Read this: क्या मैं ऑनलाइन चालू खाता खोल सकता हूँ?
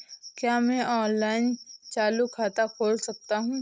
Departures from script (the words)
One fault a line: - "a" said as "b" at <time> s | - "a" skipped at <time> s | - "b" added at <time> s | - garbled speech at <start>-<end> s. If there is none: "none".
none